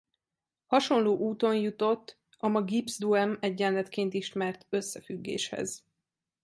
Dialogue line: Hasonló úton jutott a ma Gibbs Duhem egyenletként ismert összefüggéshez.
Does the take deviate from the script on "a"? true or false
false